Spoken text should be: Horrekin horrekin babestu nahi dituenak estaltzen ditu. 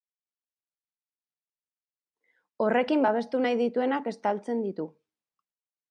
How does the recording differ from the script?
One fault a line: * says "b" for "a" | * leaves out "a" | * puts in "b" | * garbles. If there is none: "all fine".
* leaves out "horrekin"